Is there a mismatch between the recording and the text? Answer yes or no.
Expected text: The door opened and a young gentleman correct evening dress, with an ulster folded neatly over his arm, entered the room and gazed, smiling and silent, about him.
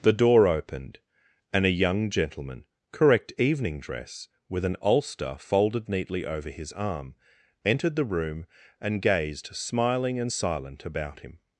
no